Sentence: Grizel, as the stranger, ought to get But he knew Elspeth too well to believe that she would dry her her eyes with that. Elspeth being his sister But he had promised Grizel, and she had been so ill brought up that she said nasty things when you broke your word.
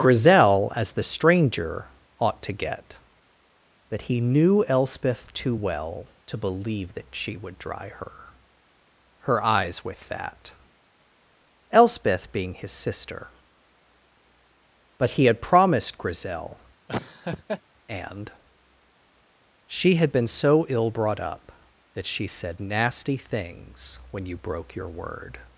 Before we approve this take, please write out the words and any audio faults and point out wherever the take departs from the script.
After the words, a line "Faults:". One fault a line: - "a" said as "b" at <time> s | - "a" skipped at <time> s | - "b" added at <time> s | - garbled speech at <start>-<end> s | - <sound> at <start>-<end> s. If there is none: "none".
Grizel, as the stranger, ought to get But he knew Elspeth too well to believe that she would dry her her eyes with that. Elspeth being his sister But he had promised Grizel, and she had been so ill brought up that she said nasty things when you broke your word.
Faults:
- laugh at 16.9-17.6 s